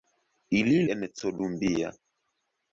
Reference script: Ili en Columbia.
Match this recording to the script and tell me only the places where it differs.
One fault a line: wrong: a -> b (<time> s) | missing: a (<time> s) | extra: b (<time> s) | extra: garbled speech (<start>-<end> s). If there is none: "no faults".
no faults